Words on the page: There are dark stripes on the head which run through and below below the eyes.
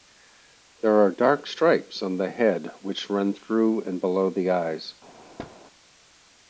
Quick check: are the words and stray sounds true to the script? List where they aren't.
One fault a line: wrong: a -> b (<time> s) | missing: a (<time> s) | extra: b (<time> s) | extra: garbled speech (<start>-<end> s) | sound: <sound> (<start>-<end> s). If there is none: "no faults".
missing: below (4.3 s)
sound: thud (5.4-5.6 s)